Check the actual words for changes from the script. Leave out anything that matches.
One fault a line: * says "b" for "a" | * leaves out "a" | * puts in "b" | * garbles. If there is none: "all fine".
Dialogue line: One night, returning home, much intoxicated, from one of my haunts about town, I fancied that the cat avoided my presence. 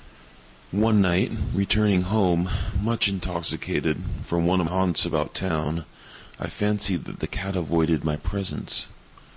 * leaves out "my"